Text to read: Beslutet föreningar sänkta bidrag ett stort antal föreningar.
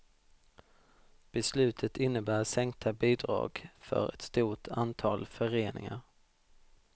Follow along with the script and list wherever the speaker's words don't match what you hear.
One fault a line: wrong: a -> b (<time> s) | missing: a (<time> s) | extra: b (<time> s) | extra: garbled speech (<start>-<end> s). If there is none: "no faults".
wrong: föreningar -> innebär (2.0 s)
extra: för (3.8 s)